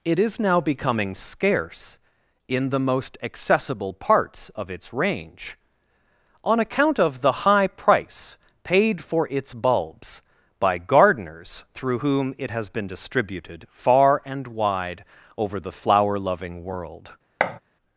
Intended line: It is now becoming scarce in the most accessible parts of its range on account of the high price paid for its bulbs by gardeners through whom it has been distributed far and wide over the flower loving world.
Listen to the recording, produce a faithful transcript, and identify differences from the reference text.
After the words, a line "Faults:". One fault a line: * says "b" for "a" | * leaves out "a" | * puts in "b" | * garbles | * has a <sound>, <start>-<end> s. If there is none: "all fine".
It is now becoming scarce in the most accessible parts of its range on account of the high price paid for its bulbs by gardeners through whom it has been distributed far and wide over the flower loving world.
Faults:
* has a thud, 17.4-17.6 s